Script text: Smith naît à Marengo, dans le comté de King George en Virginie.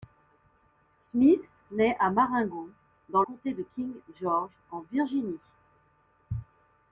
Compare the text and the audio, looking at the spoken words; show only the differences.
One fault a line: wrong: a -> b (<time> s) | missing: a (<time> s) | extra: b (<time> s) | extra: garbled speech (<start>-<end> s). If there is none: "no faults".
missing: le (3.2 s)